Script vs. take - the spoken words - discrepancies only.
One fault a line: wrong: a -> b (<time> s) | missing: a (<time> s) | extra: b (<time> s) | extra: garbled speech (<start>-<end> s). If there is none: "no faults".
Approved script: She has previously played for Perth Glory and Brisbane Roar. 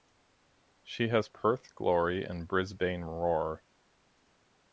missing: previously played for (1.3 s)